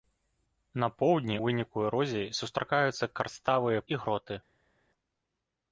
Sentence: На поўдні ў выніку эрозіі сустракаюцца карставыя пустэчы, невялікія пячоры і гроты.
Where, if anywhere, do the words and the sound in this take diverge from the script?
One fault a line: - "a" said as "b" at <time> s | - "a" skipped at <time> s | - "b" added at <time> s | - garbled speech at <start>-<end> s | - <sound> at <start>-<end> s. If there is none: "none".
- "ў" skipped at 1.4 s
- "пустэчы невялікія пячоры" skipped at 3.8 s